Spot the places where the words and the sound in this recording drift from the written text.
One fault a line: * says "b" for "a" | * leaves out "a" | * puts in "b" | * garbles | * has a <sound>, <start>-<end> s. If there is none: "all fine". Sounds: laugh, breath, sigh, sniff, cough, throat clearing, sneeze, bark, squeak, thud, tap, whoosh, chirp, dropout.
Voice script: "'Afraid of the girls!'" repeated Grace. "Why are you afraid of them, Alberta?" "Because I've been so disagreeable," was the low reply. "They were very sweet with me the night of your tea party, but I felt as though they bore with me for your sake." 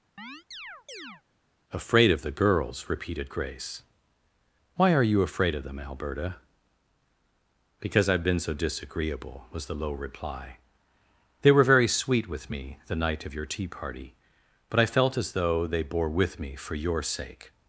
* has a chirp, 0.2-1.2 s